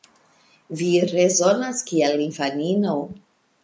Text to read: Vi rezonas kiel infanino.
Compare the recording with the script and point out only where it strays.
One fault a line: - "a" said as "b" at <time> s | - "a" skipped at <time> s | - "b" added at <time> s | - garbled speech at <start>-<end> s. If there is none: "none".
none